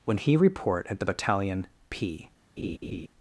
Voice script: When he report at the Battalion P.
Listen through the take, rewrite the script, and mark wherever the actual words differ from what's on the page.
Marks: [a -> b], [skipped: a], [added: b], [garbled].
When he report at the Battalion P.